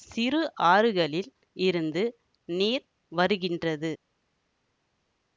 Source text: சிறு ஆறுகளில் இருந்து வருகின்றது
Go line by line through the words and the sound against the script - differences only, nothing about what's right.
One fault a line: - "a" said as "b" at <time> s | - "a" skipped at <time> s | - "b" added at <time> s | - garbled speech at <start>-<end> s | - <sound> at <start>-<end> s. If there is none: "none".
- "நீர்" added at 2.5 s